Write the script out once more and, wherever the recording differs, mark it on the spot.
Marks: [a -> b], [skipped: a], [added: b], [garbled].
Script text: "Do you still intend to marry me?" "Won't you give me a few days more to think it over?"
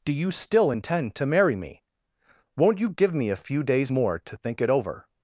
"Do you still intend to marry me?" "Won't you give me a few days more to think it over?"